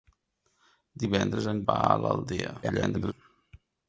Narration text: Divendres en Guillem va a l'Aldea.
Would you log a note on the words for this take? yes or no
yes